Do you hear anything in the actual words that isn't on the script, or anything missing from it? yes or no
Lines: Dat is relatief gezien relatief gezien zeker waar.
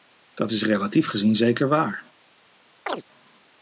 yes